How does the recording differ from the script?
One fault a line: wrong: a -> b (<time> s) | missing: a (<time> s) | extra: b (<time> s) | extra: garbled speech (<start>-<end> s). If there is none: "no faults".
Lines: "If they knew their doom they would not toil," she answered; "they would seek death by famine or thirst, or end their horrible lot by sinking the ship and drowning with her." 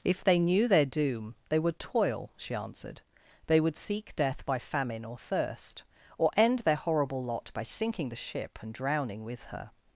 missing: not (1.8 s)